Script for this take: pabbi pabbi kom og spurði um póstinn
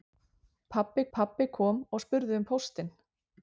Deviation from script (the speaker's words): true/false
false